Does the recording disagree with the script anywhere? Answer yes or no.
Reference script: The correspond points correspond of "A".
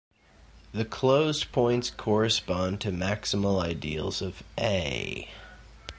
yes